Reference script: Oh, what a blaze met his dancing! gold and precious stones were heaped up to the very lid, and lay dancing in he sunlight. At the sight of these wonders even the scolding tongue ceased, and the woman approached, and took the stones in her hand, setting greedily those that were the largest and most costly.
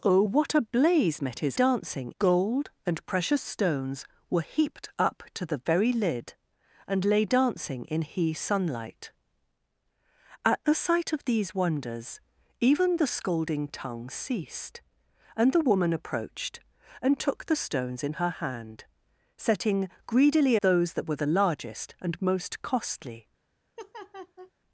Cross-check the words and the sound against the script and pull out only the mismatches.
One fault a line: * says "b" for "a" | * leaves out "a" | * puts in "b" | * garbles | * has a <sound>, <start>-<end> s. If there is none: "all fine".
* has a laugh, 23.8-24.5 s